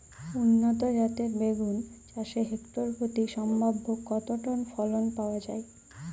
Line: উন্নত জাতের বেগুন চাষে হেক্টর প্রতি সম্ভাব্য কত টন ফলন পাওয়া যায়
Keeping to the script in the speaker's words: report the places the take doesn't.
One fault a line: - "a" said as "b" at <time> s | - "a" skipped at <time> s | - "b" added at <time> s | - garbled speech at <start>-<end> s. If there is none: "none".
none